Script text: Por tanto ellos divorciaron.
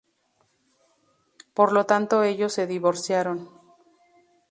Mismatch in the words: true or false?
true